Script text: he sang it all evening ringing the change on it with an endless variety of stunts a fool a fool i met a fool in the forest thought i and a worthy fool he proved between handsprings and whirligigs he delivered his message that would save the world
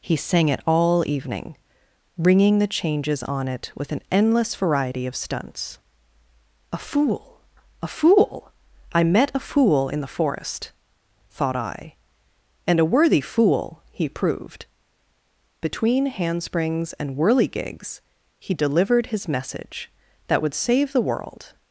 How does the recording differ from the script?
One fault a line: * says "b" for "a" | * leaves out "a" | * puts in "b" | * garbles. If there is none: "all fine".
* says "changes" for "change"